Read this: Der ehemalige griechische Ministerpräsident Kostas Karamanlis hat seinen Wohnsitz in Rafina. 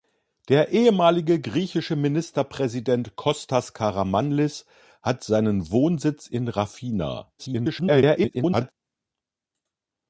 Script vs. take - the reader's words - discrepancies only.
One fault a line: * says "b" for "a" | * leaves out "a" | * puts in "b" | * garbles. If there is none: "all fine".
* garbles